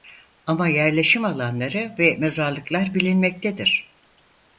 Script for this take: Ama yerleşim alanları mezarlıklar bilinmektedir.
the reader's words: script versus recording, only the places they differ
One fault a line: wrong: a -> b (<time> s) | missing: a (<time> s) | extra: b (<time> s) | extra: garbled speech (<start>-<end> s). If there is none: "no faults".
extra: ve (2.0 s)